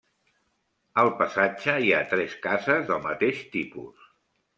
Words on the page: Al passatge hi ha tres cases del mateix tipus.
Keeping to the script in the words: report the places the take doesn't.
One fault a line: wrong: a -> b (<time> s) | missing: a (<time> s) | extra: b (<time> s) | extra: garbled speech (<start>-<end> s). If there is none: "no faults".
no faults